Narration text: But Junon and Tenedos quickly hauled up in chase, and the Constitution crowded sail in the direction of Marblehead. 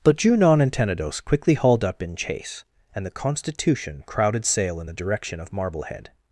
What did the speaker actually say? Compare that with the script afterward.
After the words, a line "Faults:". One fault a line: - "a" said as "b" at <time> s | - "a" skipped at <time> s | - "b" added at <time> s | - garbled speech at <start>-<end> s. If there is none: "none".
But Junon and Tenedos quickly hauled up in chase, and the Constitution crowded sail in the direction of Marblehead.
Faults:
none